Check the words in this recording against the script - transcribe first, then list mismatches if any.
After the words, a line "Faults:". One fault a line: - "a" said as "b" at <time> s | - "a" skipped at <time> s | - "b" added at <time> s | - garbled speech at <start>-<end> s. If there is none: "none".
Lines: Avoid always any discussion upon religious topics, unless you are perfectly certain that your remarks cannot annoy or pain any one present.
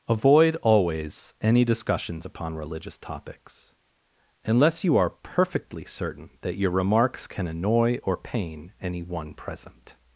Avoid always any discussions upon religious topics, unless you are perfectly certain that your remarks can annoy or pain any one present.
Faults:
- "discussion" said as "discussions" at 1.6 s
- "cannot" said as "can" at 7.3 s